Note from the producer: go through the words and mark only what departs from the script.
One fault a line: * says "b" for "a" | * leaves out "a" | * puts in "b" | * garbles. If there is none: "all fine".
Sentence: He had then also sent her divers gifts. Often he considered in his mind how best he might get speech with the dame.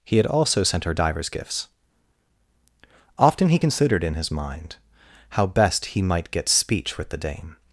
* leaves out "then"